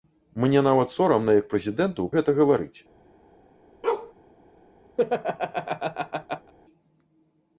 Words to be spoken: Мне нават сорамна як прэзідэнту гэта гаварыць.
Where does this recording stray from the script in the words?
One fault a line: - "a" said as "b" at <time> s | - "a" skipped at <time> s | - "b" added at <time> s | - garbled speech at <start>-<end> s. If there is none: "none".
none